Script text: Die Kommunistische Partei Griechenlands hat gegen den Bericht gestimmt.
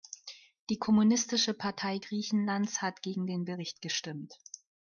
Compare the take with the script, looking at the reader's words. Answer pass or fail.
pass